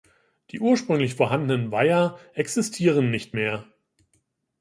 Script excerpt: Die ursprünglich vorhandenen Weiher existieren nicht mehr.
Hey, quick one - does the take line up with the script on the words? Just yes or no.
yes